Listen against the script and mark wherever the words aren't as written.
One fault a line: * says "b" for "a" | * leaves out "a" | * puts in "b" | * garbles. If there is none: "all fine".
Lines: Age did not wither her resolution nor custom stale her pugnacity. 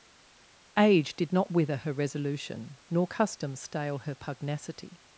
all fine